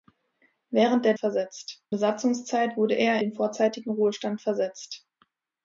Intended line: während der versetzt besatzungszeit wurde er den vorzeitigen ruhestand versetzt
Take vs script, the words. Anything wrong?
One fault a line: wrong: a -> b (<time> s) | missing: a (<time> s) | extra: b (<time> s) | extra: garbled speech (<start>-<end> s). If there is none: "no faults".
no faults